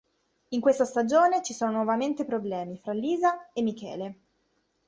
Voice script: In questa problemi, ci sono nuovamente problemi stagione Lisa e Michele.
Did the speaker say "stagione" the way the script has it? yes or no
no